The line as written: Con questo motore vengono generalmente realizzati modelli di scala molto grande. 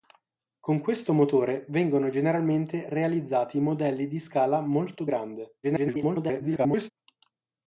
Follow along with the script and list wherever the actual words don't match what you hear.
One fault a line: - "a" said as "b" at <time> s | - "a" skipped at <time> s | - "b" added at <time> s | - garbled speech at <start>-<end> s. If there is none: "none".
- garbled speech at 5.6-6.9 s